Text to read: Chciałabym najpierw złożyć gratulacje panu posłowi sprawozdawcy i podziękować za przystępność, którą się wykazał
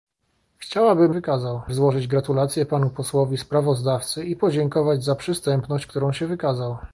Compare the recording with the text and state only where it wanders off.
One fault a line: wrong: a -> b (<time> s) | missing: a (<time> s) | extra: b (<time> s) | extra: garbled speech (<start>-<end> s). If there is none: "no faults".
wrong: najpierw -> wykazał (1.1 s)